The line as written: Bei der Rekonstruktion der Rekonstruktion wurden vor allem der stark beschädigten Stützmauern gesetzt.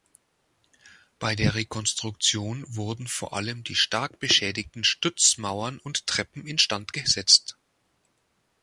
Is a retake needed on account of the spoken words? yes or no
yes